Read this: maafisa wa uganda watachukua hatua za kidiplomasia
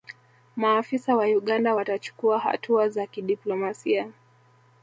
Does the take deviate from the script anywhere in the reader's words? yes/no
no